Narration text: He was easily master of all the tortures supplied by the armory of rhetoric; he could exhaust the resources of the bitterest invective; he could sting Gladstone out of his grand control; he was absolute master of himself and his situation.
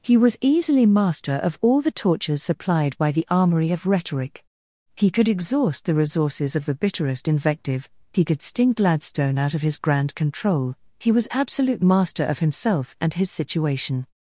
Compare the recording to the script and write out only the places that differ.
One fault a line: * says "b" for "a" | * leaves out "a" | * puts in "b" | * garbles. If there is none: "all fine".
all fine